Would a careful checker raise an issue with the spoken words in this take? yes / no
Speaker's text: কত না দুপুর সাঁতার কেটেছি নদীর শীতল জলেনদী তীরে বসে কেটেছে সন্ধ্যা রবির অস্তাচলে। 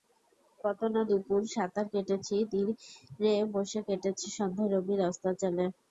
yes